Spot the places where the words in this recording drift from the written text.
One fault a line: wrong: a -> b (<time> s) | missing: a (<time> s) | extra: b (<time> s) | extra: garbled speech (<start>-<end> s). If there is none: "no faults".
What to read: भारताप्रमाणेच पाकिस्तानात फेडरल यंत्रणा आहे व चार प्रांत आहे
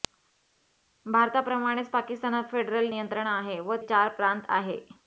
no faults